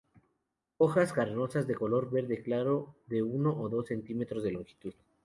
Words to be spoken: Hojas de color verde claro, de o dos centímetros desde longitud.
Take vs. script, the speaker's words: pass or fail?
fail